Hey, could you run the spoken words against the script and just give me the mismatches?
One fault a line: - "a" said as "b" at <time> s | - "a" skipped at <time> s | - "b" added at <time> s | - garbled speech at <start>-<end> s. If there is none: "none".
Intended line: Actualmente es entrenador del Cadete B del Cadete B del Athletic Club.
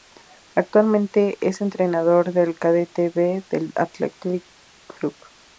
- "Cadete B del" skipped at 3.7 s